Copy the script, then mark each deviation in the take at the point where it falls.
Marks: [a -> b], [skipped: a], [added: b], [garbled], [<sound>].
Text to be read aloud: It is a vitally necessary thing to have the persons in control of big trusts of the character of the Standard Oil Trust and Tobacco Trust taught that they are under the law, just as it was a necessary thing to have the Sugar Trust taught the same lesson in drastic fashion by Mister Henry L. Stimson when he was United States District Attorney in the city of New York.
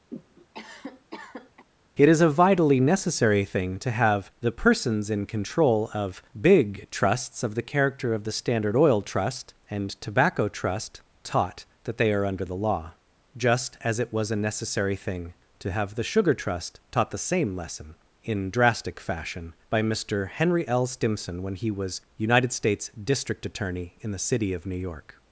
[cough] It is a vitally necessary thing to have the persons in control of big trusts of the character of the Standard Oil Trust and Tobacco Trust taught that they are under the law, just as it was a necessary thing to have the Sugar Trust taught the same lesson in drastic fashion by Mister Henry L. Stimson when he was United States District Attorney in the city of New York.